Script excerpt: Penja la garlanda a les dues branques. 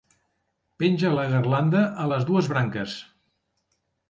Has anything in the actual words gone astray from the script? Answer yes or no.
no